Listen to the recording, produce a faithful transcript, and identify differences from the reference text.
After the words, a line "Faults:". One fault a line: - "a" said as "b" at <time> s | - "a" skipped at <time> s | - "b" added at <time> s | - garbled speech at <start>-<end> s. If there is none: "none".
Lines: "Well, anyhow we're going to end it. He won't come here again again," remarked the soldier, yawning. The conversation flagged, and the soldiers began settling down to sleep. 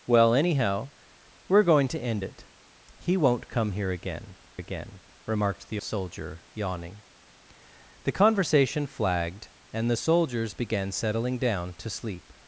"Well, anyhow we're going to end it. He won't come here again again," remarked the soldier, yawning. The conversation flagged, and the soldiers began settling down to sleep.
Faults:
none